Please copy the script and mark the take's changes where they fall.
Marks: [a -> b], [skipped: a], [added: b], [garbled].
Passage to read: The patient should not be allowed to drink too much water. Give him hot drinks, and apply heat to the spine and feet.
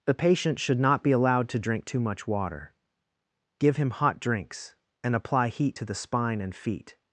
The patient should not be allowed to drink too much water. Give him hot drinks, and apply heat to the spine and feet.